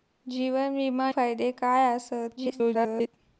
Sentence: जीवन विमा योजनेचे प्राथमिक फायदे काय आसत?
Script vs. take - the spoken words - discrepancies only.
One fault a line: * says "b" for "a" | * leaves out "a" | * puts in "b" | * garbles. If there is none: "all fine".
* leaves out "योजनेचे प्राथमिक"
* garbles